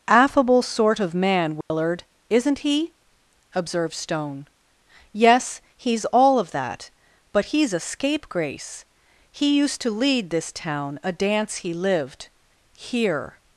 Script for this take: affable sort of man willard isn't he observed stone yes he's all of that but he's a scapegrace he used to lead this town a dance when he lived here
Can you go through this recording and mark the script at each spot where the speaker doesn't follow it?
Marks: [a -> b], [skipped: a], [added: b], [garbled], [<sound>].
affable sort of man willard [dropout] isn't he observed stone yes he's all of that but he's a scapegrace he used to lead this town a dance [skipped: when] he lived here